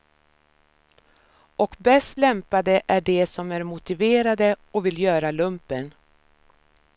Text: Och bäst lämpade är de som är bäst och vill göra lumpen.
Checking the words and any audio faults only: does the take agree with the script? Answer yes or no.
no